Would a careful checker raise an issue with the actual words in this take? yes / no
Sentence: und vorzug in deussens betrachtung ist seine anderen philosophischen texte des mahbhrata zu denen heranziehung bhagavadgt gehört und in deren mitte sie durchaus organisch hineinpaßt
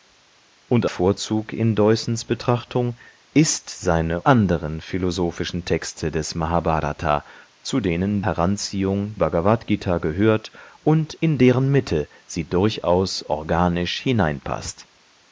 no